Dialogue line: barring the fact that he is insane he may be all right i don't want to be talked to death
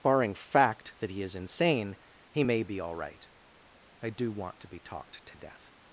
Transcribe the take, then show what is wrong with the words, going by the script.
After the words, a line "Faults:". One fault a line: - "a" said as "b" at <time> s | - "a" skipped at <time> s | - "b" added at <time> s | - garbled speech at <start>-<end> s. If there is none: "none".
barring fact that he is insane he may be all right i do want to be talked to death
Faults:
- "the" skipped at 0.3 s
- "don't" said as "do" at 4.1 s